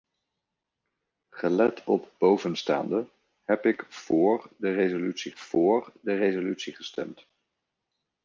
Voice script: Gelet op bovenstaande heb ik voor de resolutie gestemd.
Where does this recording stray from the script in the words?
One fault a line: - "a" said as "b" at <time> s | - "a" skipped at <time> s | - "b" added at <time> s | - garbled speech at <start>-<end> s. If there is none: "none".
- "voor de resolutie" added at 5.3 s